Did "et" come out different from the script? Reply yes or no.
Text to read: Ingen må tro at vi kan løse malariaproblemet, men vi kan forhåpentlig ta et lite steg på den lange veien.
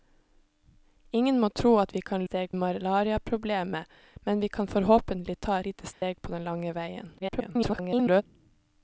yes